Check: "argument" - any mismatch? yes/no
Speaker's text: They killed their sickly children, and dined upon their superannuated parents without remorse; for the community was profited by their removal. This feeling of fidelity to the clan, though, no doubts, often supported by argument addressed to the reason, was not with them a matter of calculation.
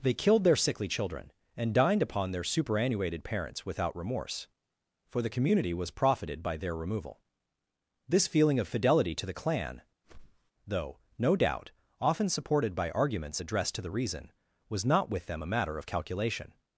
yes